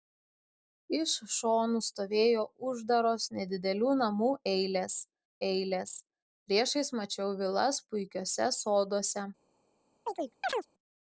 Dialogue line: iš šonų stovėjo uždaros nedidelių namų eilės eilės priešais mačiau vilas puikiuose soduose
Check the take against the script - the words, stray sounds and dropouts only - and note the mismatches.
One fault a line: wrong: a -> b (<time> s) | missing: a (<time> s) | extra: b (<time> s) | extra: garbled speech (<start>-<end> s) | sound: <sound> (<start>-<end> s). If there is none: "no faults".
sound: chirp (10.1-10.7 s)